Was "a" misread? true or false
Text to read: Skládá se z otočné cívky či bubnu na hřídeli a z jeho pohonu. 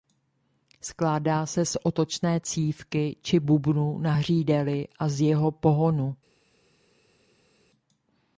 false